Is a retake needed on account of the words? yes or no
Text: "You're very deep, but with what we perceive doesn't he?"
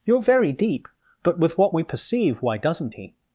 yes